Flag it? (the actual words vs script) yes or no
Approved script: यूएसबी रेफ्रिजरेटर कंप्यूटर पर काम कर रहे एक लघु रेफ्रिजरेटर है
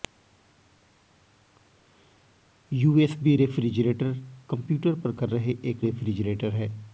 yes